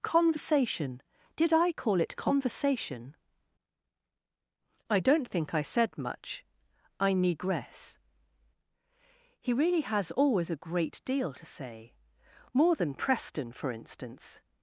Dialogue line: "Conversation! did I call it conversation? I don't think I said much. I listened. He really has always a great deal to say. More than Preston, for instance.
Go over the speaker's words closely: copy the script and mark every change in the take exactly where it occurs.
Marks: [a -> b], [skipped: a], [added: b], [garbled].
"Conversation! did I call it conversation? I don't think I said much. I [listened. -> negress] He really has always a great deal to say. More than Preston, for instance.